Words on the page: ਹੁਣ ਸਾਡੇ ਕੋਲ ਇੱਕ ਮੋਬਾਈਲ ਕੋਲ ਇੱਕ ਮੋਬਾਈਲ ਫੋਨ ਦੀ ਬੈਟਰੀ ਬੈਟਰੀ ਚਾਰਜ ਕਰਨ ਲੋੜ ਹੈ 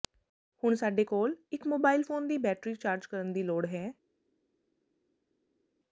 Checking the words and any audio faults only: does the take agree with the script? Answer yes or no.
no